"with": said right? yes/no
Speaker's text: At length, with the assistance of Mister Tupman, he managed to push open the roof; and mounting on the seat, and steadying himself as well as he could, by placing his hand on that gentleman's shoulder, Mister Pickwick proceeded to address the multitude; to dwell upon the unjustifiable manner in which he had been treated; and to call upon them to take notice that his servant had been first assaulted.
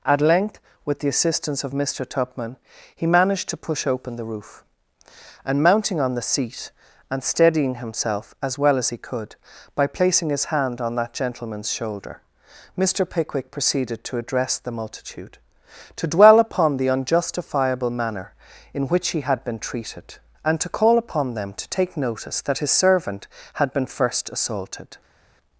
yes